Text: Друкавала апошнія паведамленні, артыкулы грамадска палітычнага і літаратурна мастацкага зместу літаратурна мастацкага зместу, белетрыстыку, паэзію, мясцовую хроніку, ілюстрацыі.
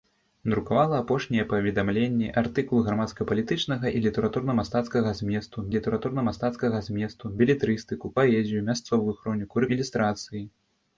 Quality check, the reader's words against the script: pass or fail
pass